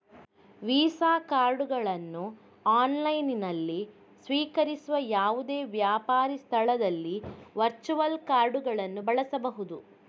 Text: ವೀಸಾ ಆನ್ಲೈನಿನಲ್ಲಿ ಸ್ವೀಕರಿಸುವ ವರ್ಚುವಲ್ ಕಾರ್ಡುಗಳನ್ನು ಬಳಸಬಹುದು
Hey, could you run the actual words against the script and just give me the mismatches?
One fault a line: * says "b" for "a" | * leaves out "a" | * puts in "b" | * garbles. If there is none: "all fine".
* puts in "ಕಾರ್ಡುಗಳನ್ನು"
* puts in "ಯಾವುದೇ ವ್ಯಾಪಾರಿ ಸ್ಥಳದಲ್ಲಿ"